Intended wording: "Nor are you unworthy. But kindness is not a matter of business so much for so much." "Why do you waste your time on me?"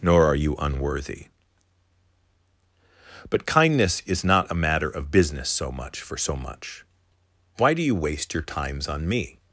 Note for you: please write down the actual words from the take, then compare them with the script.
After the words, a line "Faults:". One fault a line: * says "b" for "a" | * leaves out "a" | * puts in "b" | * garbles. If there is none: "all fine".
"Nor are you unworthy. But kindness is not a matter of business so much for so much." "Why do you waste your times on me?"
Faults:
* says "times" for "time"